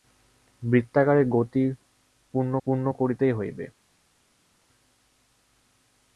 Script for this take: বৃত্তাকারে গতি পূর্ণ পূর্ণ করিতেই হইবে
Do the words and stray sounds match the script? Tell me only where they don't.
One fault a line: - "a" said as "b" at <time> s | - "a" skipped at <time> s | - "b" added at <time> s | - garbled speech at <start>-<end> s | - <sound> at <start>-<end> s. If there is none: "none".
none